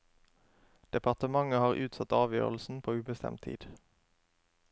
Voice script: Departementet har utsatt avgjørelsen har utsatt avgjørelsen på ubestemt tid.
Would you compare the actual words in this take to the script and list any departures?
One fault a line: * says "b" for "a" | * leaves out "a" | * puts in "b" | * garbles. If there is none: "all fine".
* leaves out "har utsatt avgjørelsen"